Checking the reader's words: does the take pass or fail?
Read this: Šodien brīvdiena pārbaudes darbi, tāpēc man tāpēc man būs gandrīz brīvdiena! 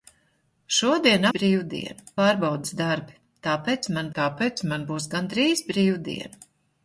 pass